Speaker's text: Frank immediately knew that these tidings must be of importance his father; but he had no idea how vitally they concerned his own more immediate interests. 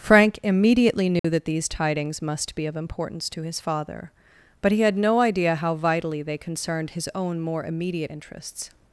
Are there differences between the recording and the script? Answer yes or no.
yes